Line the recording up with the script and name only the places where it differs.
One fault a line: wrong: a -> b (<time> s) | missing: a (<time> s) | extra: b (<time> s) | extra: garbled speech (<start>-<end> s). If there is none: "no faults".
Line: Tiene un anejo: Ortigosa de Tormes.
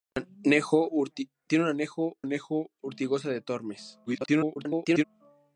extra: anejo (2.2 s)
extra: garbled speech (4.1-5.0 s)